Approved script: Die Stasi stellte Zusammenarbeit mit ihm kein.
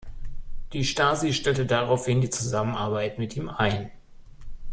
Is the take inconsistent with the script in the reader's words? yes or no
yes